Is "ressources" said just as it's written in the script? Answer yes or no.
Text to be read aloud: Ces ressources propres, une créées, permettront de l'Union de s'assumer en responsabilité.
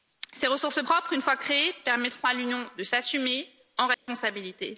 yes